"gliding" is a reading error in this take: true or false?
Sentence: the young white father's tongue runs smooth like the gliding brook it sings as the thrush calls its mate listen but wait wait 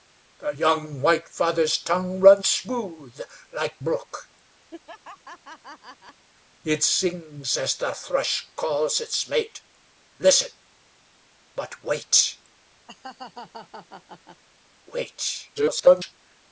true